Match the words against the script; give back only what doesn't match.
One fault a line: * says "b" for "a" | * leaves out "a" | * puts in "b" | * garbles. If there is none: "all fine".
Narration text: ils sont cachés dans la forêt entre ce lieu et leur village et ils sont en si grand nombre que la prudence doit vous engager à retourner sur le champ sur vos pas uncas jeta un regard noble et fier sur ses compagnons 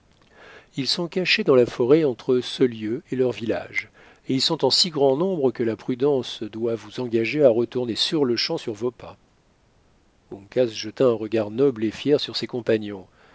all fine